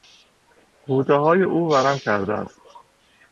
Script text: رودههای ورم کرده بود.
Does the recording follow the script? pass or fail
fail